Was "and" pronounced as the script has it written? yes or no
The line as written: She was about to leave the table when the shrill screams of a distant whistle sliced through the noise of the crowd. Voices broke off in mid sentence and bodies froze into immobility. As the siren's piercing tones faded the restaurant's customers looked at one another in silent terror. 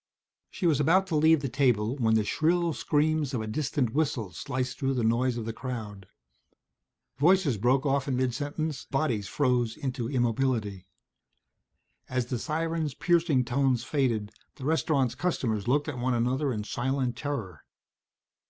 no